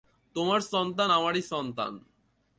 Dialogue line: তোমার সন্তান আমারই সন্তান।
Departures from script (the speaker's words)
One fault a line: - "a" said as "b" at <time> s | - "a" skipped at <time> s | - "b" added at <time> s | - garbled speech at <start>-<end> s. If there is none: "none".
none